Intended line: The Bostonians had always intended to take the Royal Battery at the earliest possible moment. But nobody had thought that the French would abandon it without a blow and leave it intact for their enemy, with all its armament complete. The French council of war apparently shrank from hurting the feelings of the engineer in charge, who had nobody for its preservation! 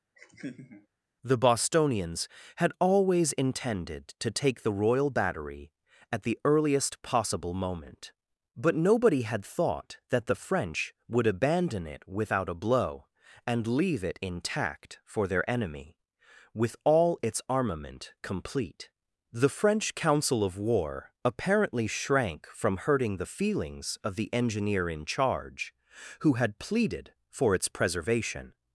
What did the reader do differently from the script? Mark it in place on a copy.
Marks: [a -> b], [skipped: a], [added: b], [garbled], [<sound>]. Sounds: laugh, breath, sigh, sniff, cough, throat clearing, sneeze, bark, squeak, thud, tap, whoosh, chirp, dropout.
[laugh] The Bostonians had always intended to take the Royal Battery at the earliest possible moment. But nobody had thought that the French would abandon it without a blow and leave it intact for their enemy, with all its armament complete. The French council of war apparently shrank from hurting the feelings of the engineer in charge, who had [nobody -> pleaded] for its preservation!